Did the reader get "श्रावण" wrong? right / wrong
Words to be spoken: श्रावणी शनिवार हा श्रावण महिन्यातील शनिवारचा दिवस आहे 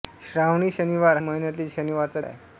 wrong